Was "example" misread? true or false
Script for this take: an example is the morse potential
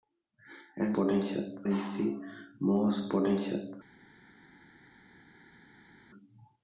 true